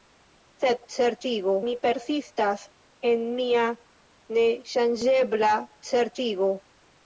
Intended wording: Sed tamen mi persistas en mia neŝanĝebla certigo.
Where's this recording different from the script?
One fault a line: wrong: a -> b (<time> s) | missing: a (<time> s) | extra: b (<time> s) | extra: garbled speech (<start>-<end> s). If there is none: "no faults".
wrong: tamen -> certigo (1.0 s)